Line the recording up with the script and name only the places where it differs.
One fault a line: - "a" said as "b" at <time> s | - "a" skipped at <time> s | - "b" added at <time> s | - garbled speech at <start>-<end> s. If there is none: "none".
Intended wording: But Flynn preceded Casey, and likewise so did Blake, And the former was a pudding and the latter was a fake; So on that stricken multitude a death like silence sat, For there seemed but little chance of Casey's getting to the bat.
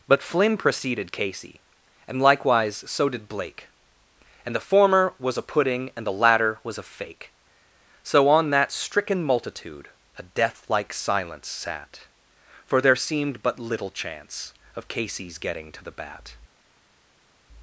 none